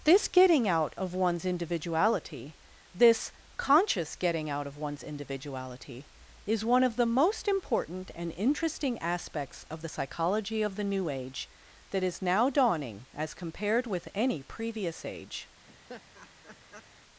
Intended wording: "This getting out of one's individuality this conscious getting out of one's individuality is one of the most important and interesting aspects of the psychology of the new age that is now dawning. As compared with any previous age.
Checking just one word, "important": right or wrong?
right